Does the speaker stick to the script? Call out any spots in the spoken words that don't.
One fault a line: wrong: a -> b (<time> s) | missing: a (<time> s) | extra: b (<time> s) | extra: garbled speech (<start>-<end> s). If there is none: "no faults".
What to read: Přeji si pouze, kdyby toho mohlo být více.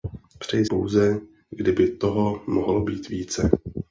missing: si (0.7 s)